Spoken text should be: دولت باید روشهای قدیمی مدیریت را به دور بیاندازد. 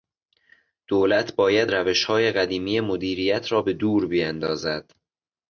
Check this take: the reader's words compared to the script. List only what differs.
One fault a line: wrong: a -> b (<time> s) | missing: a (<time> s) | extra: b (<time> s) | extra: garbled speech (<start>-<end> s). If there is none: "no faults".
no faults